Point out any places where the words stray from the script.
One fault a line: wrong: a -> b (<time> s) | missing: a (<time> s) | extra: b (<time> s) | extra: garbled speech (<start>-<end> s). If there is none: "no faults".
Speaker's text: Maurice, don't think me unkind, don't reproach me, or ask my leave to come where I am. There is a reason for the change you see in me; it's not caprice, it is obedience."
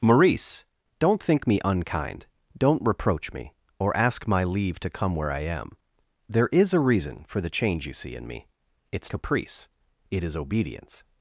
missing: not (9.1 s)